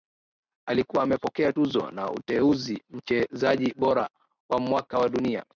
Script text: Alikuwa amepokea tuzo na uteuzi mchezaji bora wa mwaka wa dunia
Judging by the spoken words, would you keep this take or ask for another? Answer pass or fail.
pass